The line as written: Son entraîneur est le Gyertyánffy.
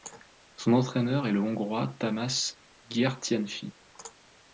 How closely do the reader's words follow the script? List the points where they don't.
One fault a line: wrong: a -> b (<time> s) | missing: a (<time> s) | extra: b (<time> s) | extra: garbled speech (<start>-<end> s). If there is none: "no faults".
extra: Hongrois Tamás (1.4 s)